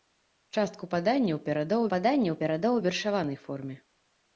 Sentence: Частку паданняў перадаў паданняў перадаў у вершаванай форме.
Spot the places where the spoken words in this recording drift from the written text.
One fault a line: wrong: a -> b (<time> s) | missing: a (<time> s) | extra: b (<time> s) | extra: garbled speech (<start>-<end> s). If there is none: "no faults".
no faults